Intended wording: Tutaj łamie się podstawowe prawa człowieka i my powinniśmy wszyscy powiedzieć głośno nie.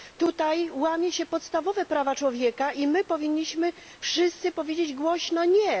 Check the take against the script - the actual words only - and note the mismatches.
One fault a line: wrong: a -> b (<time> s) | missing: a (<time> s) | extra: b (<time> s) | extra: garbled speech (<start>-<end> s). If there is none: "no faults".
no faults